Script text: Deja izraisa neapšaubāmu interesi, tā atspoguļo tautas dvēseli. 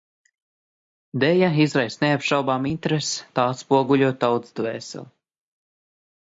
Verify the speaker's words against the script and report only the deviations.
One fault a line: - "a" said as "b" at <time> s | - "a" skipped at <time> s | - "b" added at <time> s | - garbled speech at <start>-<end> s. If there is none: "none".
none